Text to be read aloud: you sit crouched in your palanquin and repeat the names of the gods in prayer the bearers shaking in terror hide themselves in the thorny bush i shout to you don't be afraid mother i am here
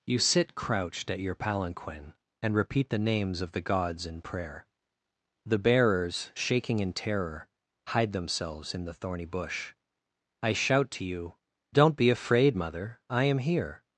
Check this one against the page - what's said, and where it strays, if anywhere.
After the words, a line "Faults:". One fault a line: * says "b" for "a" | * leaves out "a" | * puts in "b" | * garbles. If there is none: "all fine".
you sit crouched at your palanquin and repeat the names of the gods in prayer the bearers shaking in terror hide themselves in the thorny bush i shout to you don't be afraid mother i am here
Faults:
* says "at" for "in"